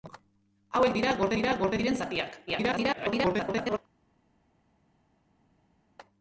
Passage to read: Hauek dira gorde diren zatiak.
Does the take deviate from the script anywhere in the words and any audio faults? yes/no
yes